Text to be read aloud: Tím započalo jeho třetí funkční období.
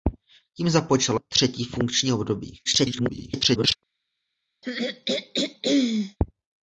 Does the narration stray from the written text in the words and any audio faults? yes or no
yes